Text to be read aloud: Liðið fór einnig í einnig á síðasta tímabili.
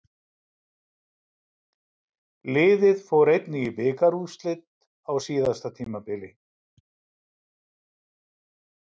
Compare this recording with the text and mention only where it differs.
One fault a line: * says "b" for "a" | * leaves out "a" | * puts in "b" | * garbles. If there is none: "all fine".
* says "bikarúrslit" for "einnig"